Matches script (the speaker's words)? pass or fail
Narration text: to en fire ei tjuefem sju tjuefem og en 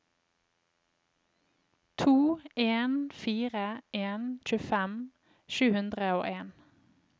fail